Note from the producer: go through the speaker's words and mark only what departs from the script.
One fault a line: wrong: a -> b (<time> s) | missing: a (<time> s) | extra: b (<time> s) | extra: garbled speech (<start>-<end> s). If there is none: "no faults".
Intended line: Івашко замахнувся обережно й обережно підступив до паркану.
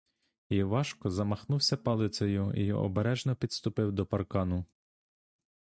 wrong: обережно -> палицею (1.8 s)